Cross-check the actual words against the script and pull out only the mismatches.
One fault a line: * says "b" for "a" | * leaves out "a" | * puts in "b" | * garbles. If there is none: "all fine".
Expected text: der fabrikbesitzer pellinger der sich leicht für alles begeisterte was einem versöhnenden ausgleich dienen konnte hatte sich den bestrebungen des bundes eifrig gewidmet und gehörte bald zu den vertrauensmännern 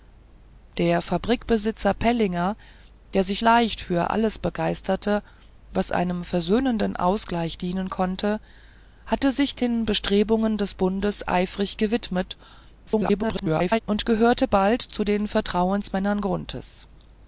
* garbles